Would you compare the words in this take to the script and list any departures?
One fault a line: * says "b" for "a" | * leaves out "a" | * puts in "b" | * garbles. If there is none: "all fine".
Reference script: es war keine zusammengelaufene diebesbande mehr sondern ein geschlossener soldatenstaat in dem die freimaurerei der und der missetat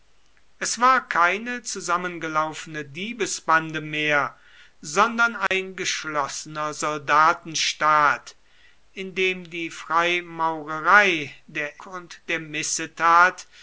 all fine